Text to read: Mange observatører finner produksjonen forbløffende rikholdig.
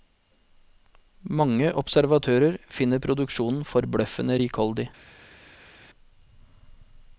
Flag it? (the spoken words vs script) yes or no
no